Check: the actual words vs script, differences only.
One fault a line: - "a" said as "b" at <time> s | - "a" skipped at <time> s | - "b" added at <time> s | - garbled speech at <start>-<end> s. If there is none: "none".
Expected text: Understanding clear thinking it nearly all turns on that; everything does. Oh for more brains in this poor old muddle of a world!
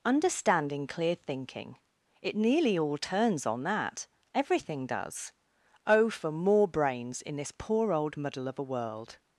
none